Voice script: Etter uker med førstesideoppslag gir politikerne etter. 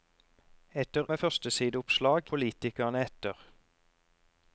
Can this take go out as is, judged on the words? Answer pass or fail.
fail